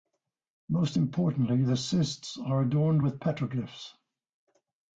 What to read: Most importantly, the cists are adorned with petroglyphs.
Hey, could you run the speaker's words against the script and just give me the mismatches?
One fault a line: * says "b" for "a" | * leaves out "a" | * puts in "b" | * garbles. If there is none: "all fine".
all fine